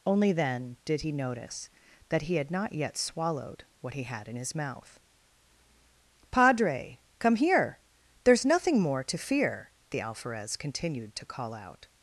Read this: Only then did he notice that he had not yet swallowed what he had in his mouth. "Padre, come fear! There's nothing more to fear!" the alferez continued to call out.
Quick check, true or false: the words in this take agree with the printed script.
false